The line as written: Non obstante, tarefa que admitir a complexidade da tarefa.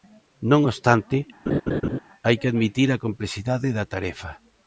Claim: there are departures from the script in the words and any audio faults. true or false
true